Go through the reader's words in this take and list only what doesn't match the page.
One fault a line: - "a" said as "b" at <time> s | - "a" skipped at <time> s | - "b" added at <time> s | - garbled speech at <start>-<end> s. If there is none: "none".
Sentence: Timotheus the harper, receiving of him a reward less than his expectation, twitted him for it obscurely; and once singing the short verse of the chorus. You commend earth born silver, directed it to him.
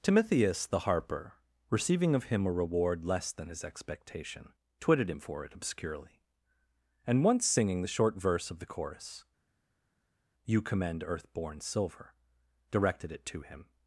none